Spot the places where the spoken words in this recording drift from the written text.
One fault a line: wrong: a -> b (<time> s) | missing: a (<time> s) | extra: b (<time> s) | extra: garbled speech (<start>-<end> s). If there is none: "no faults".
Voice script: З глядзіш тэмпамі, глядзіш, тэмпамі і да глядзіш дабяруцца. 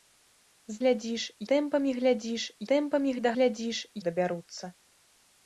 no faults